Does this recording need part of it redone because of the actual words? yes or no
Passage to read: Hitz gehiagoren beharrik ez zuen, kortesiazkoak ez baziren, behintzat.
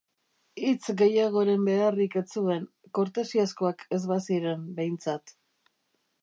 no